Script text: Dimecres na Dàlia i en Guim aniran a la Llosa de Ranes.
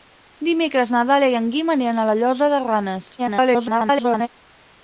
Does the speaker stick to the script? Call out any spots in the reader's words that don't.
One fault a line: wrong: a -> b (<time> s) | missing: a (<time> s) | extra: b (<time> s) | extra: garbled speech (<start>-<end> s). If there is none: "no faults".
extra: garbled speech (3.2-4.3 s)